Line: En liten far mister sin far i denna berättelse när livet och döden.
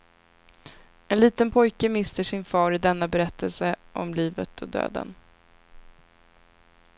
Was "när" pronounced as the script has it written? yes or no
no